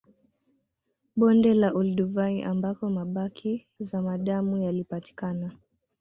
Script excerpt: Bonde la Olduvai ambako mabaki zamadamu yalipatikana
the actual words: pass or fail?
pass